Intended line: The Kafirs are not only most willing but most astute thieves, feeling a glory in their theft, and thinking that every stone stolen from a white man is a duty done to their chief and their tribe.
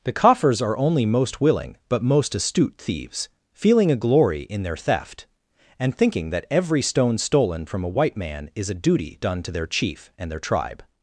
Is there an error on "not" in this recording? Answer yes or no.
yes